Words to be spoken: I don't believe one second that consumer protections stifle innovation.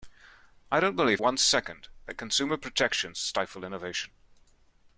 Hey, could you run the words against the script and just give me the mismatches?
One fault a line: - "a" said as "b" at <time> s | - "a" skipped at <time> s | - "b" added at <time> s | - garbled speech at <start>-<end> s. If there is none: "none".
none